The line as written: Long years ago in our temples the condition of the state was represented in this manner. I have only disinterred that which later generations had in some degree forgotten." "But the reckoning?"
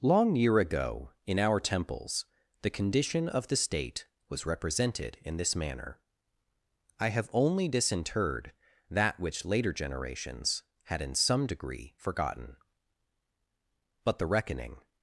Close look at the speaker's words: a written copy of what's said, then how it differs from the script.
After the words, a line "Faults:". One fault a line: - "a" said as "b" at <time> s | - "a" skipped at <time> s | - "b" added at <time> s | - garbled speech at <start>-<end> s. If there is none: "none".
Long year ago in our temples the condition of the state was represented in this manner. I have only disinterred that which later generations had in some degree forgotten." "But the reckoning?"
Faults:
- "years" said as "year" at 0.3 s